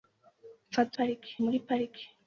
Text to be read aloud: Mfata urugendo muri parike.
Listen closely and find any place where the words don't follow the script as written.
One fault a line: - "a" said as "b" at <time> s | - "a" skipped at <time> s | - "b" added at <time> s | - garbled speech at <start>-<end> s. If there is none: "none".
- "urugendo" said as "parike" at 1.0 s